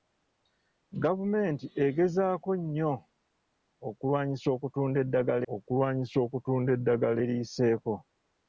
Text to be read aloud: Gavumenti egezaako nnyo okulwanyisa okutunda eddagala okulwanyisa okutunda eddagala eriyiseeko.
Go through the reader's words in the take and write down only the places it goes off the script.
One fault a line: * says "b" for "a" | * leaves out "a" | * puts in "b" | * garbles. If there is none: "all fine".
all fine